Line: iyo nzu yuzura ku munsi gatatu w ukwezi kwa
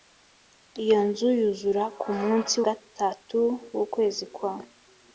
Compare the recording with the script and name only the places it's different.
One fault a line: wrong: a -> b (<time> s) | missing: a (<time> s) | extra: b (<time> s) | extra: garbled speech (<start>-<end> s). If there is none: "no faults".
no faults